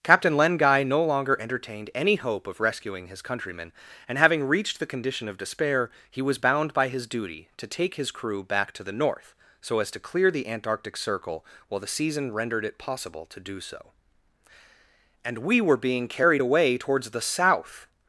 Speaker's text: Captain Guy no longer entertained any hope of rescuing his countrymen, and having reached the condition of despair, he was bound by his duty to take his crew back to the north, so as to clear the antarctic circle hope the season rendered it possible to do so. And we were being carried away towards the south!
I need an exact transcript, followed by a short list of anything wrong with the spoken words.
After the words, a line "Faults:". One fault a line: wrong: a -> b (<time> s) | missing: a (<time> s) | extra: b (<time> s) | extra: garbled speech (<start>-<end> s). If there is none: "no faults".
Captain Len Guy no longer entertained any hope of rescuing his countrymen, and having reached the condition of despair, he was bound by his duty to take his crew back to the north, so as to clear the antarctic circle while the season rendered it possible to do so. And we were being carried away towards the south!
Faults:
extra: Len (0.3 s)
wrong: hope -> while (11.7 s)